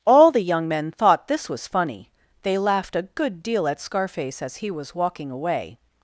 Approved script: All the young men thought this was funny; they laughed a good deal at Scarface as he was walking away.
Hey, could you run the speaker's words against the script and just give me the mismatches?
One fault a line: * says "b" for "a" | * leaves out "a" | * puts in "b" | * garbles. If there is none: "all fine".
all fine